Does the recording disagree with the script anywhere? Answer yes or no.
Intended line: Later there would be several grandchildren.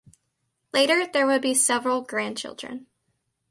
no